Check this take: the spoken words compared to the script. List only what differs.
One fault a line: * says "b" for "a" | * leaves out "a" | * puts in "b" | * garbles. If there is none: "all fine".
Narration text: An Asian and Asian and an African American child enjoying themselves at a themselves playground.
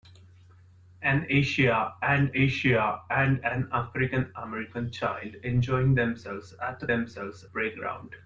all fine